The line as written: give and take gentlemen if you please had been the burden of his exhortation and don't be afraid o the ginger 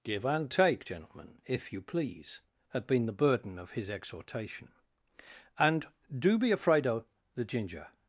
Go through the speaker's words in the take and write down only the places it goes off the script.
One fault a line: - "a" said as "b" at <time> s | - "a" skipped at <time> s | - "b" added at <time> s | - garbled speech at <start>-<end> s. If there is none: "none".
- "don't" said as "do" at 6.2 s